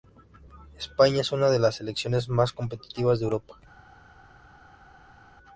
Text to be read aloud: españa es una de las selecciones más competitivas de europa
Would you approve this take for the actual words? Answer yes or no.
yes